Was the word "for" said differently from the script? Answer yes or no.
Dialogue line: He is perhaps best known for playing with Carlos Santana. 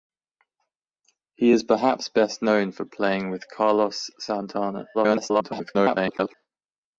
no